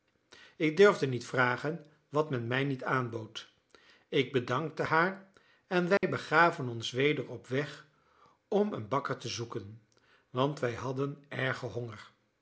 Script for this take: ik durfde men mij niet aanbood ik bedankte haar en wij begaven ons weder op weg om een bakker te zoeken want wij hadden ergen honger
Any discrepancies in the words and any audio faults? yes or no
yes